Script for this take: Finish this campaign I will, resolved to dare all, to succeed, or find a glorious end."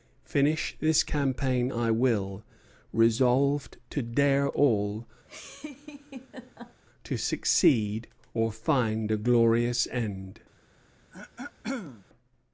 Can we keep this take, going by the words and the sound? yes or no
no